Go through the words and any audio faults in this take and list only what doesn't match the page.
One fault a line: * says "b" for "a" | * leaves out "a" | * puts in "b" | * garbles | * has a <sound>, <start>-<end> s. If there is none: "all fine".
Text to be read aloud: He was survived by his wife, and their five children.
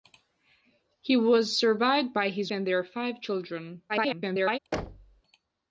* leaves out "wife"
* garbles
* has a thud, 4.7-5.2 s